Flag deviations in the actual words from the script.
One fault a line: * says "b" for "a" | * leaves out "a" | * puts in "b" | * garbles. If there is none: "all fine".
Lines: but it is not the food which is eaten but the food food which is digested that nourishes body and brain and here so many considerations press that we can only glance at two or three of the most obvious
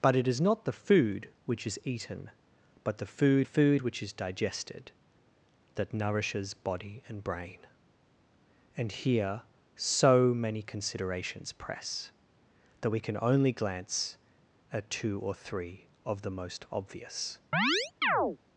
all fine